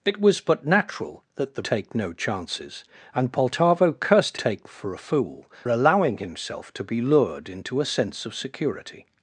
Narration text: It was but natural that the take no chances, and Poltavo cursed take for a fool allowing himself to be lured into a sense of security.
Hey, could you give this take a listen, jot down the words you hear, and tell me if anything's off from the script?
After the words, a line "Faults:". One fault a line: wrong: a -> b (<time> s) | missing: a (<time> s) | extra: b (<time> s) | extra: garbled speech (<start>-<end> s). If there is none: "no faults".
It was but natural that the take no chances, and Poltavo cursed take for a fool allowing himself to be lured into a sense of security.
Faults:
no faults